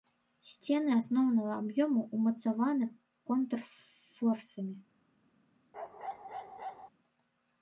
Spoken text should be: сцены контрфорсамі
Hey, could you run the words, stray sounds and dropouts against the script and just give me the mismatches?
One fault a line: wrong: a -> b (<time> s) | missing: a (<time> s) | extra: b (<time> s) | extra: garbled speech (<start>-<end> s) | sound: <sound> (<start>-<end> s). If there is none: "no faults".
extra: асноўнага аб'ёму ўмацаваны (1.0 s)
sound: bark (5.7-6.9 s)